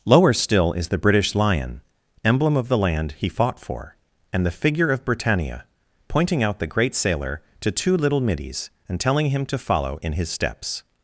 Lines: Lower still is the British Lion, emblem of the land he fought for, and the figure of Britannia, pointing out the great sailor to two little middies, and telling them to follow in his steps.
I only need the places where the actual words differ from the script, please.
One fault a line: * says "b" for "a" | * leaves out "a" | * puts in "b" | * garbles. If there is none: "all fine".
* says "him" for "them"